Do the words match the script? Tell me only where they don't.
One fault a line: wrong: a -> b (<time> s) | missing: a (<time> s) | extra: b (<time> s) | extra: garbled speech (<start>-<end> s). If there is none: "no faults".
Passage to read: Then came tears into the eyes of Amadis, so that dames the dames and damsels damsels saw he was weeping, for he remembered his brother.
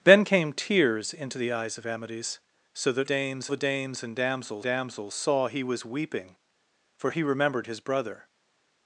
no faults